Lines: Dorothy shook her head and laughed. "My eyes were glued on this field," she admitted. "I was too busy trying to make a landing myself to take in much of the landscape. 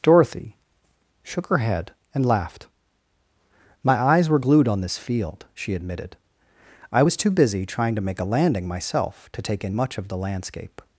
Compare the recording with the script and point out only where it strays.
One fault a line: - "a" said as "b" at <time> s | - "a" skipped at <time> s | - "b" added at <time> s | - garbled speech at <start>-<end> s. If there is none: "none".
none